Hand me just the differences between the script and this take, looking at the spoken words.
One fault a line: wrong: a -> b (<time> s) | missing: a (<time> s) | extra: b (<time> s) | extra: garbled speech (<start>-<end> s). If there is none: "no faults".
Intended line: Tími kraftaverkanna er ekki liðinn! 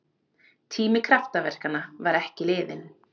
wrong: er -> var (2.1 s)